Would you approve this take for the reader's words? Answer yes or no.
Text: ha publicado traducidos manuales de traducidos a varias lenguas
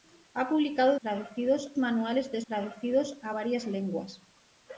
yes